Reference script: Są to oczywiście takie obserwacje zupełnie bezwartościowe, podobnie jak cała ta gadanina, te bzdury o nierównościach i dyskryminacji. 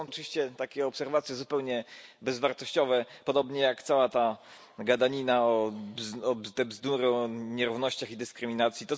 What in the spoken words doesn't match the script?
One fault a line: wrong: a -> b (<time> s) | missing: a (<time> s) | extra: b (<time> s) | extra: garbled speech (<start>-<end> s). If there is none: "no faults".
missing: to (0.1 s)